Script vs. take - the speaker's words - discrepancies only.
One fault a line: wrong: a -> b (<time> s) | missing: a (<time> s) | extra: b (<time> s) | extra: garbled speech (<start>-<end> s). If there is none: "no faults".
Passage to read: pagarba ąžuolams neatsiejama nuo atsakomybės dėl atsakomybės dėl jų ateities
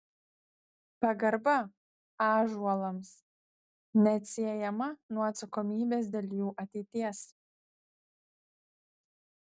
missing: atsakomybės dėl (6.3 s)